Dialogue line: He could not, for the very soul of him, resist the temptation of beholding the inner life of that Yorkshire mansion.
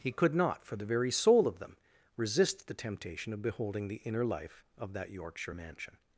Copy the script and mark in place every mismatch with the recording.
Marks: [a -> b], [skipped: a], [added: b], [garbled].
He could not, for the very soul of [him, -> them] resist the temptation of beholding the inner life of that Yorkshire mansion.